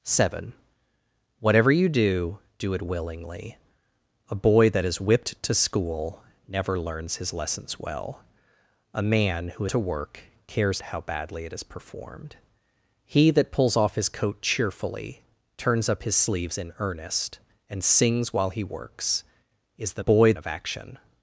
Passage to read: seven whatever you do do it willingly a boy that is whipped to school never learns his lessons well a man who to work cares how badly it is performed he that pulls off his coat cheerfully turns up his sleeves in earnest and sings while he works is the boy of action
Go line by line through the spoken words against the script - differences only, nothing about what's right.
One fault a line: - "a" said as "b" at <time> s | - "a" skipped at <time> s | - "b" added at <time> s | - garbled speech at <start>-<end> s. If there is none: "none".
none